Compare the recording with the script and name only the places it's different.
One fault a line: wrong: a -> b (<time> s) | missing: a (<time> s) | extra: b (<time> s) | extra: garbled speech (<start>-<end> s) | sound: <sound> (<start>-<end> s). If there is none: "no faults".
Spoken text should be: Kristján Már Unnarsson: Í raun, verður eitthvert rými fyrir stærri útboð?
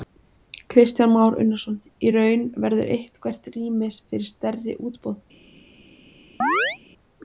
sound: chirp (6.4-6.8 s)